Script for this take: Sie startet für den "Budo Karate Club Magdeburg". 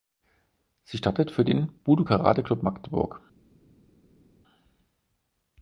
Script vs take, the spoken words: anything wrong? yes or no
no